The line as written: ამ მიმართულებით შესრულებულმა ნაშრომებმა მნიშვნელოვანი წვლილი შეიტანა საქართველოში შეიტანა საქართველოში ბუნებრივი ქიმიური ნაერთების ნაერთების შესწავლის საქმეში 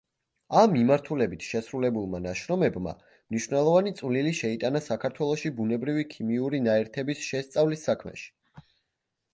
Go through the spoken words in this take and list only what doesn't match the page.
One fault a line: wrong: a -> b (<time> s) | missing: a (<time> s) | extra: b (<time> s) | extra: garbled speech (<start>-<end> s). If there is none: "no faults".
missing: შეიტანა საქართველოში (5.5 s)
missing: ნაერთების (7.3 s)